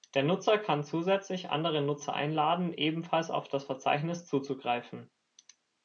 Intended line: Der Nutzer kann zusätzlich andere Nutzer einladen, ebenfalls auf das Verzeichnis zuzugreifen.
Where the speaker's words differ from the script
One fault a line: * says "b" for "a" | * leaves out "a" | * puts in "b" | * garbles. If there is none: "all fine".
all fine